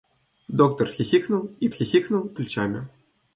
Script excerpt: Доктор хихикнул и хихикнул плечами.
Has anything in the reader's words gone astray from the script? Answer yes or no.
no